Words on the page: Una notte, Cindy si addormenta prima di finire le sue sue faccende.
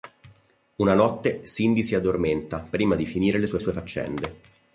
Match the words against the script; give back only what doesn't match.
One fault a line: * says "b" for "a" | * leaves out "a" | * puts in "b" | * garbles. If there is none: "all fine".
all fine